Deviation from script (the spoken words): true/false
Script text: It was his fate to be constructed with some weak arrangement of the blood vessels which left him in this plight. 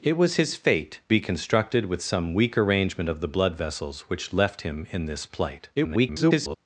true